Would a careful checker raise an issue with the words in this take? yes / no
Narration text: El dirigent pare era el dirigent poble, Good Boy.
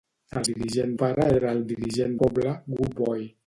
no